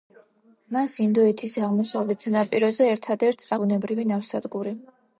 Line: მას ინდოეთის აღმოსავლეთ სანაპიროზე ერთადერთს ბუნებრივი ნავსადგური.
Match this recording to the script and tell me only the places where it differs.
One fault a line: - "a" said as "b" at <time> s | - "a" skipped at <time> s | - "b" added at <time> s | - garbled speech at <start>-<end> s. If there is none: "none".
none